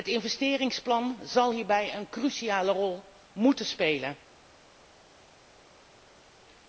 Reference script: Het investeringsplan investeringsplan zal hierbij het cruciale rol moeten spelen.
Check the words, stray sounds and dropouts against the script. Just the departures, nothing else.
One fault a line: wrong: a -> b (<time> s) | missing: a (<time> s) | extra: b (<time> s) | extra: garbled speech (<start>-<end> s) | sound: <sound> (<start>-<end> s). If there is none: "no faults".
missing: investeringsplan (1.2 s)
wrong: het -> een (2.0 s)